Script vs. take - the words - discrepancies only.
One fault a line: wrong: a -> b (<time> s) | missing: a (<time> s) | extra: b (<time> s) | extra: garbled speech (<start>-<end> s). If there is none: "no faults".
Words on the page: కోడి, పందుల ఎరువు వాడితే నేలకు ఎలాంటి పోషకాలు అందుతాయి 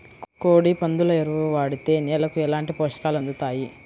no faults